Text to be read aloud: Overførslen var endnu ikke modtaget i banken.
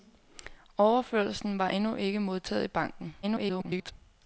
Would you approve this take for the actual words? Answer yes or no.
no